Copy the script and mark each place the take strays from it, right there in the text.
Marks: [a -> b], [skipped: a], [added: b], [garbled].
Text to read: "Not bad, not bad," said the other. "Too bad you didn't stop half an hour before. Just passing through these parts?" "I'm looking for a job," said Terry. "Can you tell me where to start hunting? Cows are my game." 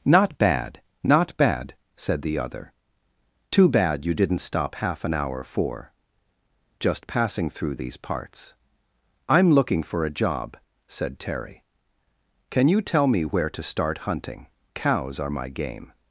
"Not bad, not bad," said the other. "Too bad you didn't stop half an hour [before. -> for] Just passing through these parts?" "I'm looking for a job," said Terry. "Can you tell me where to start hunting? Cows are my game."